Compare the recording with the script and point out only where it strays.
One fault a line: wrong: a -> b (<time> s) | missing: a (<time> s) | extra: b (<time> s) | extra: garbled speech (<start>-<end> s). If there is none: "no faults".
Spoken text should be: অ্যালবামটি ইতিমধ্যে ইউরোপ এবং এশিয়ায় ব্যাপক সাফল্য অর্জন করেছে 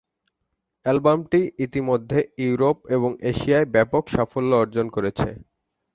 no faults